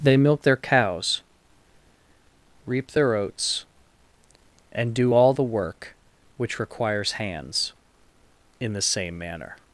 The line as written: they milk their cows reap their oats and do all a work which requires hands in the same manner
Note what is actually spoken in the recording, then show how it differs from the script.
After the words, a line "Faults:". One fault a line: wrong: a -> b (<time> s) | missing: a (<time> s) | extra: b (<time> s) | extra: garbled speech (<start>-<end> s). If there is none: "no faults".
they milk their cows reap their oats and do all the work which requires hands in the same manner
Faults:
wrong: a -> the (5.3 s)